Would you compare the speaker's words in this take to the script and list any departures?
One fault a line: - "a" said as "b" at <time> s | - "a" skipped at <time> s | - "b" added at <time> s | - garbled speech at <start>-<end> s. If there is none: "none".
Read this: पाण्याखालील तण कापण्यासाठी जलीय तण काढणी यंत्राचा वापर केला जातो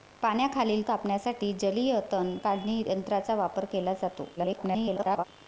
- "तण" skipped at 0.8 s
- garbled speech at 4.4-5.2 s